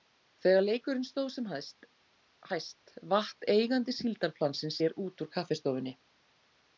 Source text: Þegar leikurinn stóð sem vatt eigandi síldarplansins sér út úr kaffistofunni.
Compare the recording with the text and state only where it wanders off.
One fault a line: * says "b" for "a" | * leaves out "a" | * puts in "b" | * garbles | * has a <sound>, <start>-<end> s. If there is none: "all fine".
* puts in "hæst"